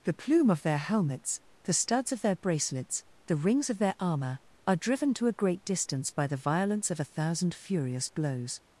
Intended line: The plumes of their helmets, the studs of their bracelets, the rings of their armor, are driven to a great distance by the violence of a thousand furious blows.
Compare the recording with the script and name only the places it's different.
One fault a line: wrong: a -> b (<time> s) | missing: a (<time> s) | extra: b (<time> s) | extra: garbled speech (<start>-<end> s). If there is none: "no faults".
wrong: plumes -> plume (0.1 s)